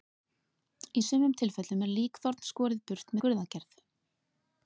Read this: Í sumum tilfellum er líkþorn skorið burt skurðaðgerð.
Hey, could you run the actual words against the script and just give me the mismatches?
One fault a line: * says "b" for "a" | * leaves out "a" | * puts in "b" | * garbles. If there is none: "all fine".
all fine